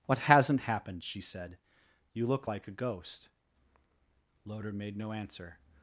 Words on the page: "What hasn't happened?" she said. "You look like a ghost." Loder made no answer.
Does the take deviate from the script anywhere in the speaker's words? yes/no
no